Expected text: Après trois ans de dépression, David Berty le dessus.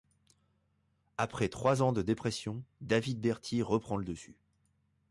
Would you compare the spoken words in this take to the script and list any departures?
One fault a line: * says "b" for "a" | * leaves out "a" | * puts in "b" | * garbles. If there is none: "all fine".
* puts in "reprend"